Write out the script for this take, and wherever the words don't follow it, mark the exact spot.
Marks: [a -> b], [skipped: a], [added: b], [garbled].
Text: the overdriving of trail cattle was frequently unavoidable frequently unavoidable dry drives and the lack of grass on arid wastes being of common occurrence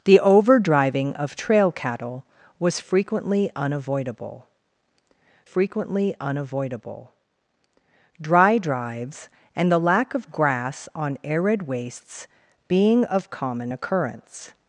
the overdriving of trail cattle was frequently unavoidable frequently unavoidable dry drives and the lack of grass on arid wastes being of common occurrence